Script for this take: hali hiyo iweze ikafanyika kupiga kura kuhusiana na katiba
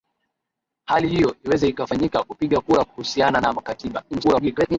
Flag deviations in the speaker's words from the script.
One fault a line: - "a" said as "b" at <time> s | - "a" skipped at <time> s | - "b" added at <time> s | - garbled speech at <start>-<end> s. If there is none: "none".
- garbled speech at 4.1-4.8 s